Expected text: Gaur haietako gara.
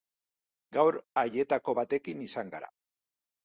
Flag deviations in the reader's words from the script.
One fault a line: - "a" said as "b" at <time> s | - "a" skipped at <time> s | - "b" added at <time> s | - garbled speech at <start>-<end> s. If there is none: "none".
- "batekin izan" added at 1.8 s